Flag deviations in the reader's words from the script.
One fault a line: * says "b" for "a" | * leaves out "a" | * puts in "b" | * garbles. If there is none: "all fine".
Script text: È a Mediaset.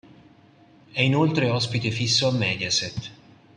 * puts in "inoltre ospite fisso"